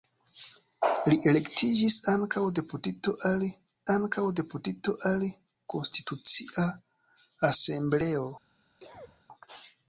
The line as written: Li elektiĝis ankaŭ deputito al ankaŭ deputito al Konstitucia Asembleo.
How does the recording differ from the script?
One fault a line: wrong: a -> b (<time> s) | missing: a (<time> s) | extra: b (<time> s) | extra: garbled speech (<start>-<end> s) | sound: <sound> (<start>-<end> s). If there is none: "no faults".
sound: cough (8.8-9.2 s)